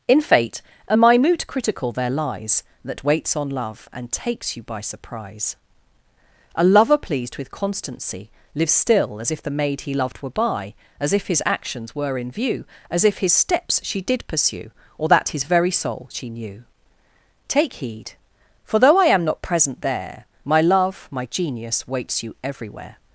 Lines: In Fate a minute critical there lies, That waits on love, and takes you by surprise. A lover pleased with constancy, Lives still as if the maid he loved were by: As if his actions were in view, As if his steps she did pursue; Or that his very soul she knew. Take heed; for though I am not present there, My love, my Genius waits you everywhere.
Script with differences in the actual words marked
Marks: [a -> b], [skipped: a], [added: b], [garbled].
In Fate a minute critical there lies, That waits on love, and takes you by surprise. A lover pleased with constancy, Lives still as if the maid he loved were by: As if his actions were in view, As if his steps she did pursue; Or that his very soul she knew. Take heed; for though I am not present there, My love, my Genius waits you everywhere.